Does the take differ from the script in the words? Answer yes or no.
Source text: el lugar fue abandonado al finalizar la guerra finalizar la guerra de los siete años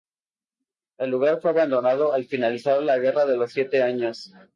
yes